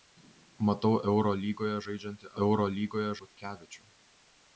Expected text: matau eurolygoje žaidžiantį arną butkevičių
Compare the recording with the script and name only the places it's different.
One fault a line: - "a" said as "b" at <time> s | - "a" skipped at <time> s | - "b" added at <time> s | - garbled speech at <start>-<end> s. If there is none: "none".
- "arną" said as "eurolygoje" at 2.4 s